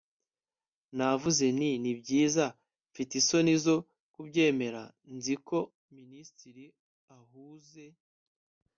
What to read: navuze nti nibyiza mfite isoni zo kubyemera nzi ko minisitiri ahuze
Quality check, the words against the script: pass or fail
pass